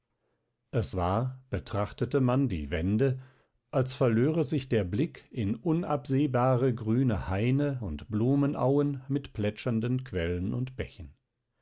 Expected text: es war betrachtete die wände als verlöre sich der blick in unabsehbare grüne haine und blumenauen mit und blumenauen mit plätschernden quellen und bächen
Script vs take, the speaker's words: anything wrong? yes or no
yes